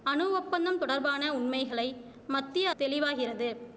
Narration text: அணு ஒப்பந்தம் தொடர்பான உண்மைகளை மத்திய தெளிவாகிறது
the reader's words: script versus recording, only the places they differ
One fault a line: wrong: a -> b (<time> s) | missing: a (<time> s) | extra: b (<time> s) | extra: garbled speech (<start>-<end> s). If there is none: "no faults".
no faults